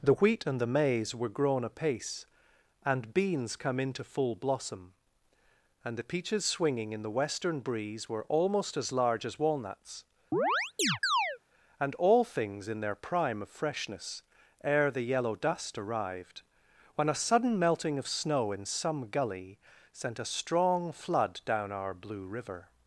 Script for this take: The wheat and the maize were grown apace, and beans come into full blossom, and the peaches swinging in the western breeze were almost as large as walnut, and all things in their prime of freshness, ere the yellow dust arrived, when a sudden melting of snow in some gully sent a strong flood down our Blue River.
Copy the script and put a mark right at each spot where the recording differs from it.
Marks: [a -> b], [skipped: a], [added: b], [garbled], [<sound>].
The wheat and the maize were grown apace, and beans come into full blossom, and the peaches swinging in the western breeze were almost as large as [walnut, -> walnuts] [chirp] and all things in their prime of freshness, ere the yellow dust arrived, when a sudden melting of snow in some gully sent a strong flood down our Blue River.